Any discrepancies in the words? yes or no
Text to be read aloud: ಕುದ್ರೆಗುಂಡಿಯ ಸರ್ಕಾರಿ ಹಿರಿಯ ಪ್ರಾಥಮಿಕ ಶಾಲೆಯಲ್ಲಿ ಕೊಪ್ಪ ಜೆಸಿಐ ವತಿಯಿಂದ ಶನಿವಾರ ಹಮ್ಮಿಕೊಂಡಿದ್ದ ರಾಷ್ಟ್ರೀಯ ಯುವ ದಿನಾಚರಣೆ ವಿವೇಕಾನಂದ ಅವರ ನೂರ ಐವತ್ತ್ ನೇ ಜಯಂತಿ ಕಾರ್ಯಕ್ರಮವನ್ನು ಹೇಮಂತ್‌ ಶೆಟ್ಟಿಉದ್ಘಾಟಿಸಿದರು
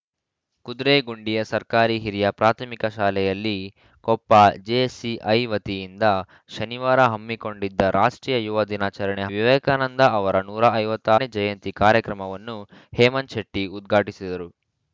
no